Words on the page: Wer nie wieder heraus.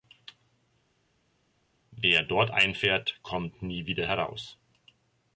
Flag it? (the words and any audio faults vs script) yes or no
yes